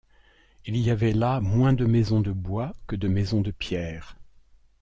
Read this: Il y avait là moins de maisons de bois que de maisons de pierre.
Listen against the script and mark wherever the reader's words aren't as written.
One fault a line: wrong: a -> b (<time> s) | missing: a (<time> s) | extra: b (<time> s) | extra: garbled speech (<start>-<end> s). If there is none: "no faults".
no faults